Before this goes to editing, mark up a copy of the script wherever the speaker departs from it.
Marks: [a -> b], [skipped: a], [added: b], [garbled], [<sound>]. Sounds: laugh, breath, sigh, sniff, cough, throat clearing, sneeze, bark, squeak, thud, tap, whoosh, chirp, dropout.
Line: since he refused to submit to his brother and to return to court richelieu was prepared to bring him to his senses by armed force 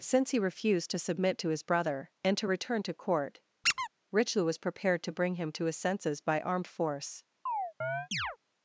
since he refused to submit to his brother and to return to court [squeak] richelieu was prepared to bring him to his senses by armed force [chirp]